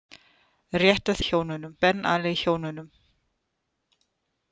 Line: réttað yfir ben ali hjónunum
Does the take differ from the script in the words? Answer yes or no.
yes